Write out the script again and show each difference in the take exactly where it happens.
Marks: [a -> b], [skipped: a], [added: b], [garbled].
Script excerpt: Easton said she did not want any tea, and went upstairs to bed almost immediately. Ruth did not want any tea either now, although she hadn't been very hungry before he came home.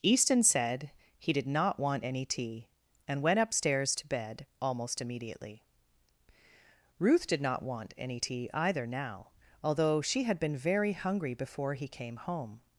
Easton said [she -> he] did not want any tea, and went upstairs to bed almost immediately. Ruth did not want any tea either now, although she [hadn't -> had] been very hungry before he came home.